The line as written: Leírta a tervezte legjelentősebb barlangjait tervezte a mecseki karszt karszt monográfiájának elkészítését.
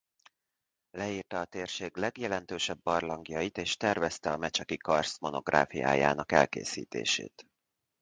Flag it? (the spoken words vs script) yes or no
yes